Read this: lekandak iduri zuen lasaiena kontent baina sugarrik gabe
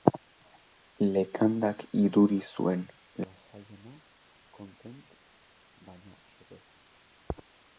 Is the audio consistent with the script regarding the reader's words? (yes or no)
no